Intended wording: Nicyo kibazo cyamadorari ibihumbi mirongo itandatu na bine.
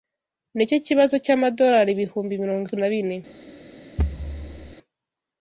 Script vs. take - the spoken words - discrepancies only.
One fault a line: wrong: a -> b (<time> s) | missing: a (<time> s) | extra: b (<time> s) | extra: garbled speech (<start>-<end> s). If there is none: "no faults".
missing: itandatu (2.6 s)